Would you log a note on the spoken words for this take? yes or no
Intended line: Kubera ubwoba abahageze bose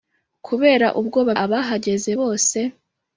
no